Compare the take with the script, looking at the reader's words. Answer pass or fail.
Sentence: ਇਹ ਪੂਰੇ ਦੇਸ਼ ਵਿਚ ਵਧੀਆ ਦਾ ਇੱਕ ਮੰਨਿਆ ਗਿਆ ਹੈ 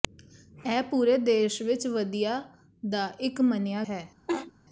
fail